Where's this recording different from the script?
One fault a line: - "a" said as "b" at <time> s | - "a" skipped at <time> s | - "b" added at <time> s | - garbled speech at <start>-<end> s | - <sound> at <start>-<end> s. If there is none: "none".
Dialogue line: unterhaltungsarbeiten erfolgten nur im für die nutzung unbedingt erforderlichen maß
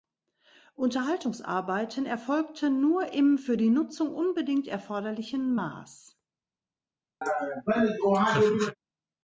- laugh at 7.2-8.8 s